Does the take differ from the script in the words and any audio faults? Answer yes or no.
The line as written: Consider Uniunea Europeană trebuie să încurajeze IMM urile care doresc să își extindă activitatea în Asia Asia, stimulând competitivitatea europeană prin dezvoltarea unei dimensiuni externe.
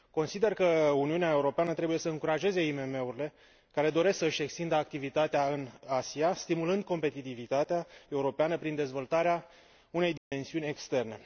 yes